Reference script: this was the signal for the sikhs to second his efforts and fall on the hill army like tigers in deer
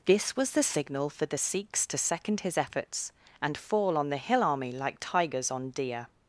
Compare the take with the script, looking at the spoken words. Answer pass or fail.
fail